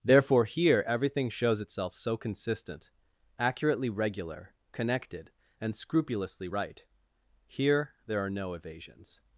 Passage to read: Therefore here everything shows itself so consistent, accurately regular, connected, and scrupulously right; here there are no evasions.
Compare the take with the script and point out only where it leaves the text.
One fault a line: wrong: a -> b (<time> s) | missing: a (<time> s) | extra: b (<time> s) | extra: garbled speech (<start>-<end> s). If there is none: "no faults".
no faults